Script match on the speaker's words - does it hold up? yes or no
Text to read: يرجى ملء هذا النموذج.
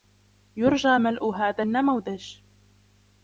yes